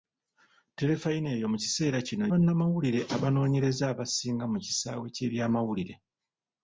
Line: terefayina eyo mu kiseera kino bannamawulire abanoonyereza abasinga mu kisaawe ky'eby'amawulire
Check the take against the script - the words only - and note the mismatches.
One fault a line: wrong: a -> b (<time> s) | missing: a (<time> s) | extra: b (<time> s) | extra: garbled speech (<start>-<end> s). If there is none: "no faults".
no faults